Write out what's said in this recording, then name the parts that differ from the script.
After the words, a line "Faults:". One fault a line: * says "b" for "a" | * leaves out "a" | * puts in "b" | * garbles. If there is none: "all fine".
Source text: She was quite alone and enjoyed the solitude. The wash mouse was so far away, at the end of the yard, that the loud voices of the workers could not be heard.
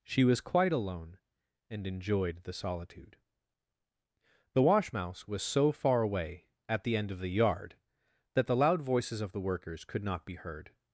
She was quite alone and enjoyed the solitude. The wash mouse was so far away, at the end of the yard, that the loud voices of the workers could not be heard.
Faults:
all fine